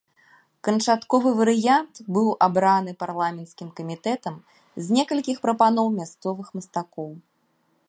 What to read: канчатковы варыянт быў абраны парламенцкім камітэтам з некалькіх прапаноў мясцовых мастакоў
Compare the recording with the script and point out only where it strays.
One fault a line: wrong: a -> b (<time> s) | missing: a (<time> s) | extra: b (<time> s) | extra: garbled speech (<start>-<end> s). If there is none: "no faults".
no faults